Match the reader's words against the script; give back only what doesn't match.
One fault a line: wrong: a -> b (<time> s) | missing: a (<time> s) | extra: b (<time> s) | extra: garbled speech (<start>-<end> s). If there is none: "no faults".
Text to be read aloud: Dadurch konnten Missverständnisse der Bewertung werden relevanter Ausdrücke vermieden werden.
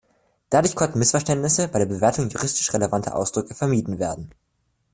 extra: bei (1.7 s)
wrong: werden -> juristisch (2.3 s)